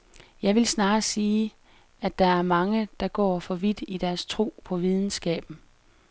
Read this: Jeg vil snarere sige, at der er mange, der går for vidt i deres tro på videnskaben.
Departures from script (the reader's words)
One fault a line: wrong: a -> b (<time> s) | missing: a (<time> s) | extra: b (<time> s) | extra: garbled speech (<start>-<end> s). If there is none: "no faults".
no faults